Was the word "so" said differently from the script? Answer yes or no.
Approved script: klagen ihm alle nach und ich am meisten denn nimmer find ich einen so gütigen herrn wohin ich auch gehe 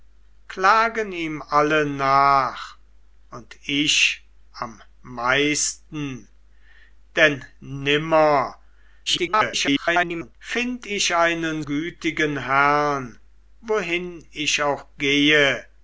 yes